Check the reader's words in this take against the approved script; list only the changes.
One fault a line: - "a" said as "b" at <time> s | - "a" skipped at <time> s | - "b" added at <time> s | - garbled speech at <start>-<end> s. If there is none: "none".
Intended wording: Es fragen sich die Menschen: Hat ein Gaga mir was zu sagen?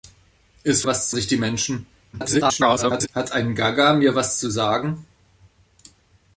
- "fragen" said as "was" at 0.8 s
- garbled speech at 2.1-3.1 s